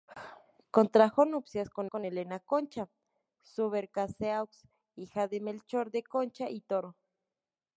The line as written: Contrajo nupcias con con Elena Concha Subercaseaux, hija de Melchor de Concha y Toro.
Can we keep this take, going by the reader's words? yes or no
yes